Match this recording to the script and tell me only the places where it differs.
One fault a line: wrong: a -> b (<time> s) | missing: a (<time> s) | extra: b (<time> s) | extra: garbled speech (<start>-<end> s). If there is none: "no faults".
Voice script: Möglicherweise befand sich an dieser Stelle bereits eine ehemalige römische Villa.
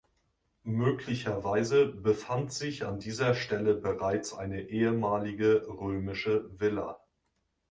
no faults